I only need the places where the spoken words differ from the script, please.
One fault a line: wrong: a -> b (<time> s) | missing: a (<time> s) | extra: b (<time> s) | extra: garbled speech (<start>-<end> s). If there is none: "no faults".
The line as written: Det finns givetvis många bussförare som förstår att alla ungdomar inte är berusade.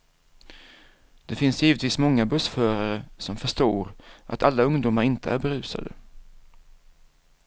no faults